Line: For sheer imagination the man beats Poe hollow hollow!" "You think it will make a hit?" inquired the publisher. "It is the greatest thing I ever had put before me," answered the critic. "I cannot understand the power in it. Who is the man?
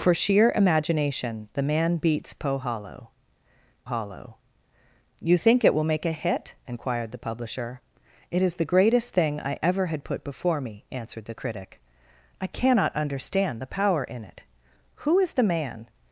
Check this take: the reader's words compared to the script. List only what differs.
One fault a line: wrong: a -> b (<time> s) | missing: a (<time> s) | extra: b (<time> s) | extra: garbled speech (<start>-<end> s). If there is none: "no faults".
no faults